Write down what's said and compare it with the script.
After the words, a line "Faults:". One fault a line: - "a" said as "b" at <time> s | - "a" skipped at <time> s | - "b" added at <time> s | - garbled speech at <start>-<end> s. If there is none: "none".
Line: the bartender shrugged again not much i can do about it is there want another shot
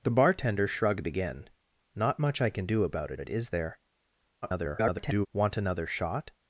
the bartender shrugged again not much i can do about it it is there [garbled] want another shot
Faults:
- "it" added at 3.2 s
- garbled speech at 4.4-5.3 s